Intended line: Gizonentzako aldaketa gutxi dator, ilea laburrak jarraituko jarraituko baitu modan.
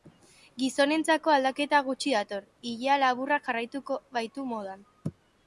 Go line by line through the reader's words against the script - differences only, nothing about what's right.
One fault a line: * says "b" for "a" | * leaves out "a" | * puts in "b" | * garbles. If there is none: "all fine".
* leaves out "jarraituko"